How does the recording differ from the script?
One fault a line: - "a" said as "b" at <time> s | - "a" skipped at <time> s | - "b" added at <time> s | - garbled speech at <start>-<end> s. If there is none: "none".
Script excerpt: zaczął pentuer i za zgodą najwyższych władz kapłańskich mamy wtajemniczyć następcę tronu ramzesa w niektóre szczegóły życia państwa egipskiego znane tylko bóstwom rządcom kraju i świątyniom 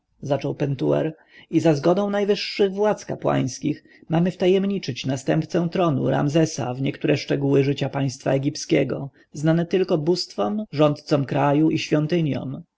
none